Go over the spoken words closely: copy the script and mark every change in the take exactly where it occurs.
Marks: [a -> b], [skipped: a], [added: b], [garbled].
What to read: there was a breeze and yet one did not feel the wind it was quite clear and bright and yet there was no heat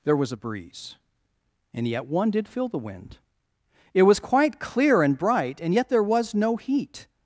there was a breeze and yet one did [skipped: not] feel the wind it was quite clear and bright and yet there was no heat